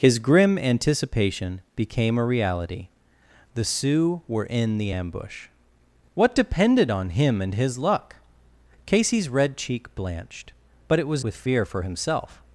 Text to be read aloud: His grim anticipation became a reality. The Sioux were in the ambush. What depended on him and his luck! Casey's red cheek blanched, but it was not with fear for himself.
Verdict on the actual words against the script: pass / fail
fail